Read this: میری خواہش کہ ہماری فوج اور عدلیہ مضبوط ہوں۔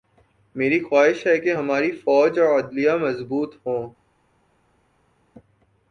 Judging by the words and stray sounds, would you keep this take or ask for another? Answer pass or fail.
fail